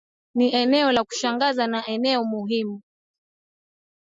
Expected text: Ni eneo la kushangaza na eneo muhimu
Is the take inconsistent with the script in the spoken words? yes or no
no